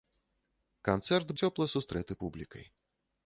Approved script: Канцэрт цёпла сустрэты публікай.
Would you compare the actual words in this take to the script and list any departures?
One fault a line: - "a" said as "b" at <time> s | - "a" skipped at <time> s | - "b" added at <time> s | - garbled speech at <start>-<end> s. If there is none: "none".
none